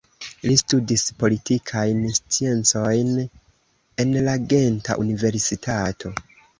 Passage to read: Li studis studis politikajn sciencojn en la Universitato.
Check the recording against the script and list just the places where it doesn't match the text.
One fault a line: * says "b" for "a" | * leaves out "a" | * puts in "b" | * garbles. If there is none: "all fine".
* leaves out "studis"
* puts in "Genta"